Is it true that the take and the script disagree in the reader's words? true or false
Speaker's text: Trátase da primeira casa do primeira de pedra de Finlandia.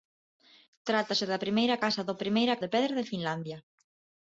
false